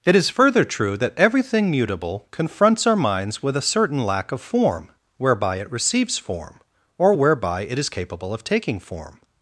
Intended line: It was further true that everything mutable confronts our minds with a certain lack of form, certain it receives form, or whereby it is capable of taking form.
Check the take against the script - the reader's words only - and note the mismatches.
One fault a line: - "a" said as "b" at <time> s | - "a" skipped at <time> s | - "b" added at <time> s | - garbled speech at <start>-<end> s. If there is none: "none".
- "was" said as "is" at 0.1 s
- "certain" said as "whereby" at 5.2 s